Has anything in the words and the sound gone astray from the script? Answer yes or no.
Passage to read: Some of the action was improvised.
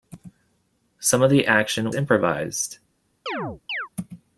yes